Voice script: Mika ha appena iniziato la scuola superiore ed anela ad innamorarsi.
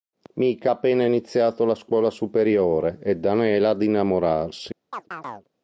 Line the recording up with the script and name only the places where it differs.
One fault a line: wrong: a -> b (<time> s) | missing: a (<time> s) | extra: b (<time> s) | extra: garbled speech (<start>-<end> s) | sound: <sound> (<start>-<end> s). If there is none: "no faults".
sound: chirp (4.9-5.5 s)